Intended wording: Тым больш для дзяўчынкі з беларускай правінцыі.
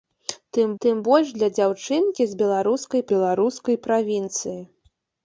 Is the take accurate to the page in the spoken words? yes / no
no